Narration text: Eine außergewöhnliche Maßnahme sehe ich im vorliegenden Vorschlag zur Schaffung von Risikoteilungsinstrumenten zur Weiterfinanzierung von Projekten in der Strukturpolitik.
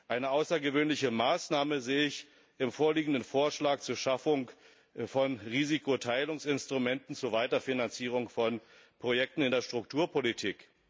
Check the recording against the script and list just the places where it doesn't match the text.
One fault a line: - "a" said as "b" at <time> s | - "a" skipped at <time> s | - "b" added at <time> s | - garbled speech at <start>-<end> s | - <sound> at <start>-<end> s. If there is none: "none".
none